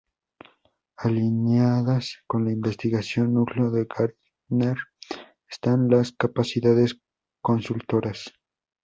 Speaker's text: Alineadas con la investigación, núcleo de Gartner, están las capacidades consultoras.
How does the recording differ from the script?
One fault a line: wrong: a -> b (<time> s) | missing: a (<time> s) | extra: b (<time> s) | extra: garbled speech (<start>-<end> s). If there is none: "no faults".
no faults